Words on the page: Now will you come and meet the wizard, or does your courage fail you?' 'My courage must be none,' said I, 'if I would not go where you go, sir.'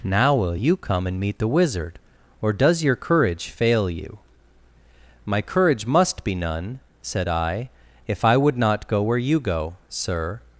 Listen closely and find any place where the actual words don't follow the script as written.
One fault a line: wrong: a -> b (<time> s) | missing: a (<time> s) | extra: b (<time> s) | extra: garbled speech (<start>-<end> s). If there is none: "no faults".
no faults